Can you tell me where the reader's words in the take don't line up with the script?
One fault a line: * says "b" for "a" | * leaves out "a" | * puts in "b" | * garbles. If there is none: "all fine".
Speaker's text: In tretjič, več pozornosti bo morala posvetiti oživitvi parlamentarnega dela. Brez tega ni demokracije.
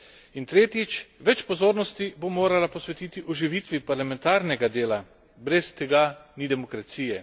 all fine